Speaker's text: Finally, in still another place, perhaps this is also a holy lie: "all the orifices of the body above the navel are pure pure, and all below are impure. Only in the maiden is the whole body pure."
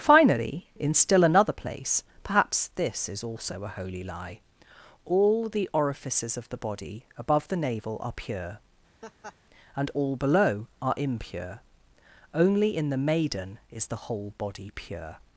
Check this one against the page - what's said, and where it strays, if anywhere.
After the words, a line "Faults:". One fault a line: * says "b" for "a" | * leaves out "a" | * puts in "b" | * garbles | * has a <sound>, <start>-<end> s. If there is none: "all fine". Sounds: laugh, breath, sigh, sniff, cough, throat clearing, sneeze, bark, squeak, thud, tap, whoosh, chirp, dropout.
Finally, in still another place, perhaps this is also a holy lie: "all the orifices of the body above the navel are pure, and all below are impure. Only in the maiden is the whole body pure."
Faults:
* leaves out "pure"
* has a laugh, 9.0-9.4 s